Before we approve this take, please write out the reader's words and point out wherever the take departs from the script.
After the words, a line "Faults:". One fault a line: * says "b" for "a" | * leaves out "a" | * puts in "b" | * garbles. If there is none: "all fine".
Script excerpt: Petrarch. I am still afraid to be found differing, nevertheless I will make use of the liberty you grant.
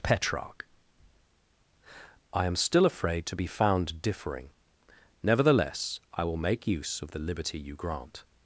Petrarch. I am still afraid to be found differing, nevertheless I will make use of the liberty you grant.
Faults:
all fine